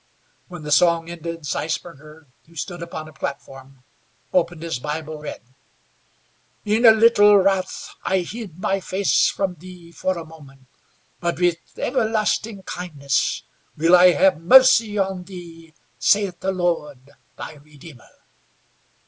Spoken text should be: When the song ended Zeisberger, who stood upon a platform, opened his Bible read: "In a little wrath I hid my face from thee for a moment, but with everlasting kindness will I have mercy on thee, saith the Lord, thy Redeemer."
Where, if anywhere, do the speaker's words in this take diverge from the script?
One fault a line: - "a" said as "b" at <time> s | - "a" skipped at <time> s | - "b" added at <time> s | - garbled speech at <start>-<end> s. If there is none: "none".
none